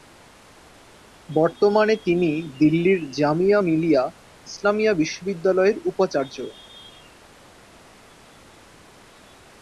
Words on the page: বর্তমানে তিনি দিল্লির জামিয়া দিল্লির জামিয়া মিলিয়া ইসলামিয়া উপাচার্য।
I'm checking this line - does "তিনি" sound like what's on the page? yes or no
yes